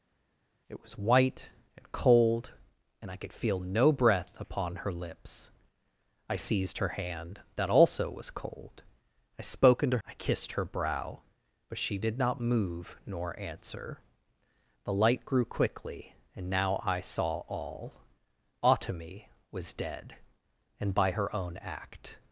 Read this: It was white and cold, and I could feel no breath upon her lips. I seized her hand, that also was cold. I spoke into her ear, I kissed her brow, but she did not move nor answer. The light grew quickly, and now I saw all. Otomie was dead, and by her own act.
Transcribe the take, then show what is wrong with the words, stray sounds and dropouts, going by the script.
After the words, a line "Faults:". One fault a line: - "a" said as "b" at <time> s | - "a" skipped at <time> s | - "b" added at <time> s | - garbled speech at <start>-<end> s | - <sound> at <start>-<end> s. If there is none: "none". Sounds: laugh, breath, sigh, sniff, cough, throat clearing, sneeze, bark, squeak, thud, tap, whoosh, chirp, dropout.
It was white and cold, and I could feel no breath upon her lips. I seized her hand, that also was cold. I spoke into I kissed her brow, but she did not move nor answer. The light grew quickly, and now I saw all. Otomie was dead, and by her own act.
Faults:
- "her ear" skipped at 10.0 s